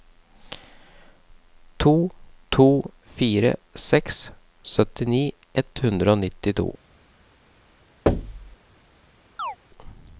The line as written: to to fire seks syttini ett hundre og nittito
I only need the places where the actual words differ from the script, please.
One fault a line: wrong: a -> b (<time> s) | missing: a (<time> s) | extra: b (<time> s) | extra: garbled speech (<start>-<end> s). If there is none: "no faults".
no faults